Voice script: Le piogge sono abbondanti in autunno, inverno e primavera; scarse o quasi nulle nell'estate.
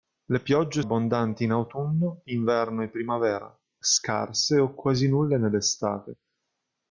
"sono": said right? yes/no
no